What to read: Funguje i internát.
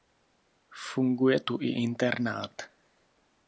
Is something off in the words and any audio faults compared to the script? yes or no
yes